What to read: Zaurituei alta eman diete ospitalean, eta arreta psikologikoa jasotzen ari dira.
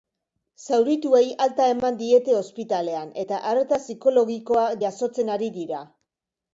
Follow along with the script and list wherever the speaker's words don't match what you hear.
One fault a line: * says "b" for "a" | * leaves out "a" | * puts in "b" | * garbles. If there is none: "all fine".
all fine